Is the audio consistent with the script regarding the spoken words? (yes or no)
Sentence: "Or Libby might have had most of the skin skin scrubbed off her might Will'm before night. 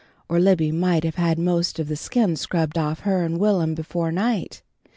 no